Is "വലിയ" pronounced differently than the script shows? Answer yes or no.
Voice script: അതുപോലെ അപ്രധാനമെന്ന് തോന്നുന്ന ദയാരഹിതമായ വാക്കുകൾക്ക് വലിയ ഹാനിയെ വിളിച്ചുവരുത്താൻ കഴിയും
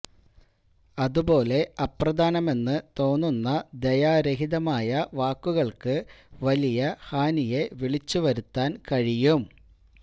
no